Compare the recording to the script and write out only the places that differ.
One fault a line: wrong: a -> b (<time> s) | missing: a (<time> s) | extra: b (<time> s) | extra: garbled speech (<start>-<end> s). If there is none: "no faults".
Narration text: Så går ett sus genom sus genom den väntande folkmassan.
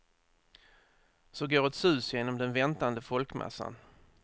missing: sus genom (2.4 s)